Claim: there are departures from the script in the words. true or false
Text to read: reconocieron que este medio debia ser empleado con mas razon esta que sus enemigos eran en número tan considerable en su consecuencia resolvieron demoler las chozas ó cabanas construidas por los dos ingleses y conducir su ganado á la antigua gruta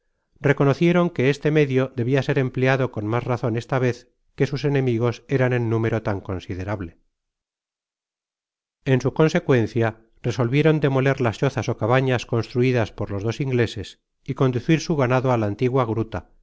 true